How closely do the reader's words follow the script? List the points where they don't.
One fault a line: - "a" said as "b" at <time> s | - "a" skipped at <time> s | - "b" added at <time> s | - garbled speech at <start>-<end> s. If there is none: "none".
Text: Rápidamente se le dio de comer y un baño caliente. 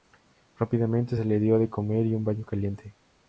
none